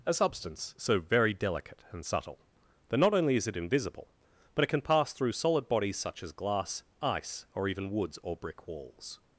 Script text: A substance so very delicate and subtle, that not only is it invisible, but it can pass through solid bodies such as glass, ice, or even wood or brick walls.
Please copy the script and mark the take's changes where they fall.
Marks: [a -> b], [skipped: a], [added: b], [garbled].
A substance so very delicate and subtle, that not only is it invisible, but it can pass through solid bodies such as glass, ice, or even [wood -> woods] or brick walls.